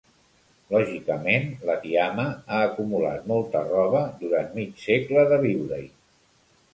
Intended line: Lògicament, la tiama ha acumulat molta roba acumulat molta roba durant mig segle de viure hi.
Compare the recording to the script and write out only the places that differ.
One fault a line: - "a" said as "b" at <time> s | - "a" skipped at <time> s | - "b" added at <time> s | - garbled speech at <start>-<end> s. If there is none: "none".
- "acumulat molta roba" skipped at 4.0 s